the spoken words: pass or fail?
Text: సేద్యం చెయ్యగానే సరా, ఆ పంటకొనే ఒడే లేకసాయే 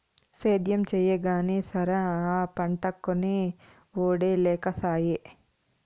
pass